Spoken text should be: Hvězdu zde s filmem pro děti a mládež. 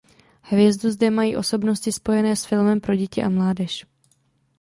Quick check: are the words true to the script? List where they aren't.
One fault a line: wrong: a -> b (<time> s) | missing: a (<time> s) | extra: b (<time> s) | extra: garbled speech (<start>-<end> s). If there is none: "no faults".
extra: mají osobnosti spojené (1.1 s)